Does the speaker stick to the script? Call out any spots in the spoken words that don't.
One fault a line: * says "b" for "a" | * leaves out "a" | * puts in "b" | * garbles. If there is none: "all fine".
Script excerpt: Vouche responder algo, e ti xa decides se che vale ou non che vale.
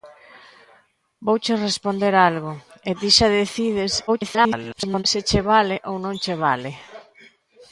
* garbles